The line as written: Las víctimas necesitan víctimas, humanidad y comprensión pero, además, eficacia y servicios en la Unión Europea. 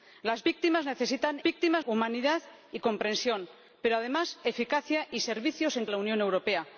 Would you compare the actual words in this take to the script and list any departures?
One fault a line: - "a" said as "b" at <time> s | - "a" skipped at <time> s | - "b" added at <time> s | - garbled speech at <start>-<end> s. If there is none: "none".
none